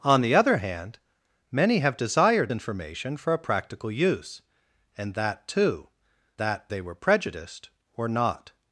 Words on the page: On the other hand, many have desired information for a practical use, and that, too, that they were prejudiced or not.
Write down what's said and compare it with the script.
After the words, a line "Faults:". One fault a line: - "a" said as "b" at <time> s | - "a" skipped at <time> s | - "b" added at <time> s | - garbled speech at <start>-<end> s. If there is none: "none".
On the other hand, many have desired information for a practical use, and that, too, that they were prejudiced or not.
Faults:
none